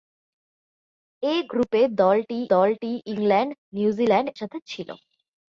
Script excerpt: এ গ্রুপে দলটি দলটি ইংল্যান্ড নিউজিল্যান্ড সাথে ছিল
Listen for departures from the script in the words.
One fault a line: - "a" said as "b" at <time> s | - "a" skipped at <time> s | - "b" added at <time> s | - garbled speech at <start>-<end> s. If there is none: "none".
none